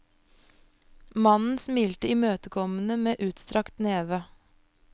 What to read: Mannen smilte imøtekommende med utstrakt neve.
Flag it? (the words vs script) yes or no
no